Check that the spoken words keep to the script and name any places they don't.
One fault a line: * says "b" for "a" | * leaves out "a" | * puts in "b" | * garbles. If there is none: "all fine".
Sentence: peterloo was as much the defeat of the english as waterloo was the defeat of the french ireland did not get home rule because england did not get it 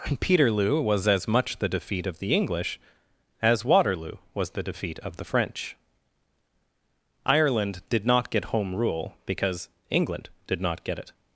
all fine